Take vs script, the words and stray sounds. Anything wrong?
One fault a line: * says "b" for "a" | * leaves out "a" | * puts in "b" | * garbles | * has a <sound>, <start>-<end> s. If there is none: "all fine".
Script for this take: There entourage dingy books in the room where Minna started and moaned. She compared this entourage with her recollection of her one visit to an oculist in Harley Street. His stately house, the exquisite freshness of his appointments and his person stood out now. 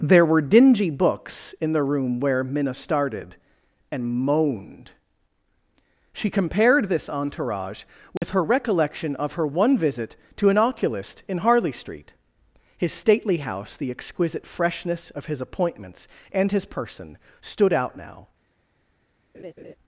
* says "were" for "entourage"
* has a dropout, 8.2-8.2 s
* has a laugh, 19.3-19.8 s